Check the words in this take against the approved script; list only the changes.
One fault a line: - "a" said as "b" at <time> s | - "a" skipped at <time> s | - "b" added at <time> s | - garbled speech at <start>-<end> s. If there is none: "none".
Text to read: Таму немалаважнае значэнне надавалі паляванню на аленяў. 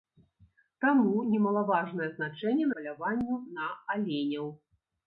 - "надавалі" skipped at 2.7 s